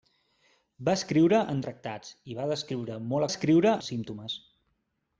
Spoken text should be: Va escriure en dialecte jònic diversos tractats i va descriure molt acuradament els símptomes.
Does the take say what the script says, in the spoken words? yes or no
no